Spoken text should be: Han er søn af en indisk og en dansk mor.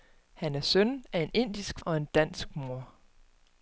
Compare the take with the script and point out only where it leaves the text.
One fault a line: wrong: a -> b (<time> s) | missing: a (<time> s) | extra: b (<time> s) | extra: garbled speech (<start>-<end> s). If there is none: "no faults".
no faults